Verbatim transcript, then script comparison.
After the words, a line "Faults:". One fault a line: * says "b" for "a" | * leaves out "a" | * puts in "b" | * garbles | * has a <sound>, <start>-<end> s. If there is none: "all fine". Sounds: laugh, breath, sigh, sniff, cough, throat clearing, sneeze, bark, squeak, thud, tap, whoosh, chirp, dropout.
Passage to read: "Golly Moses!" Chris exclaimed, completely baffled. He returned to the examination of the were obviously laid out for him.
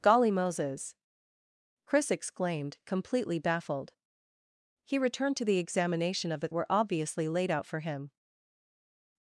"Golly Moses!" Chris exclaimed, completely baffled. He returned to the examination of the were obviously laid out for him.
Faults:
all fine